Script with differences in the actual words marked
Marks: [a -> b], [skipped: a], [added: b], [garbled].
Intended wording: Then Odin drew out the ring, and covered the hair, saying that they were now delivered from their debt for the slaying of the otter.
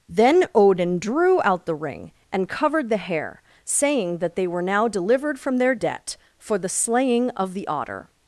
Then Odin drew out the ring, and covered the hair, saying that they were now delivered from their debt for the slaying of the otter.